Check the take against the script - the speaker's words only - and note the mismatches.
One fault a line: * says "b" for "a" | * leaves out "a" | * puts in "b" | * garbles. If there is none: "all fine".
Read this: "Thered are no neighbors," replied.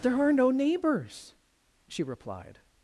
* says "There" for "Thered"
* puts in "she"